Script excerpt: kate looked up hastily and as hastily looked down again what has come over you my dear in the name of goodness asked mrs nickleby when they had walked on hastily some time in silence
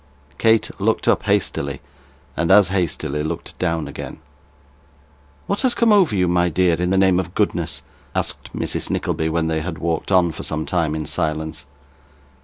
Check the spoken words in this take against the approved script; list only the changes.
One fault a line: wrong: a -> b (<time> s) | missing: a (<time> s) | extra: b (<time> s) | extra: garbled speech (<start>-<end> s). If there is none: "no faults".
wrong: hastily -> for (10.3 s)